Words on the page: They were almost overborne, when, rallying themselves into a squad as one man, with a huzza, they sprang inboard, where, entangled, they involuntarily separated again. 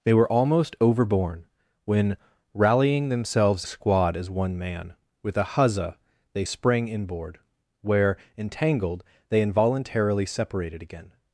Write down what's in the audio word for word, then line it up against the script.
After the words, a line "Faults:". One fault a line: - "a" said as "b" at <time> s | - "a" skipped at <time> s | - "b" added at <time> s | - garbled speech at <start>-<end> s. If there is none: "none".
They were almost overborne, when, rallying themselves a squad as one man, with a huzza, they sprang inboard, where, entangled, they involuntarily separated again.
Faults:
- "into" skipped at 3.6 s